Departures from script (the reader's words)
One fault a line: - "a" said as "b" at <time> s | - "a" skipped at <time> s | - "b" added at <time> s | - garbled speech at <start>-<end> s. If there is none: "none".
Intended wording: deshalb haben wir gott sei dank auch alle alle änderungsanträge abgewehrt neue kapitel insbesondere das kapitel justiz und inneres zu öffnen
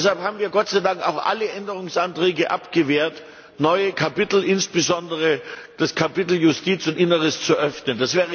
- "alle" skipped at 1.5 s